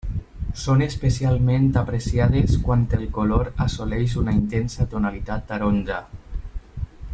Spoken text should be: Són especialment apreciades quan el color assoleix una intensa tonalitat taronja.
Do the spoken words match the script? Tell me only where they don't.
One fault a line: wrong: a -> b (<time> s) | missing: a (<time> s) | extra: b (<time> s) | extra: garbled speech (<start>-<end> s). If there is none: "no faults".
no faults